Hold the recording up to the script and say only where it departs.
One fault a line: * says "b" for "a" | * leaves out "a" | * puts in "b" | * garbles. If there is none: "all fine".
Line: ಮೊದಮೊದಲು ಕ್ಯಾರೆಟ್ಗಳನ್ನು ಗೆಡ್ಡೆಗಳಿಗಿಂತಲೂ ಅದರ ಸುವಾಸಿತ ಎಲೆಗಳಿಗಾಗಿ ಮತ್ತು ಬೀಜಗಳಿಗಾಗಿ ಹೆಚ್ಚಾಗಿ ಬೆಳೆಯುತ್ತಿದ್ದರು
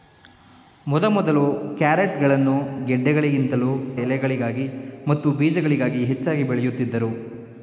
* leaves out "ಅದರ ಸುವಾಸಿತ"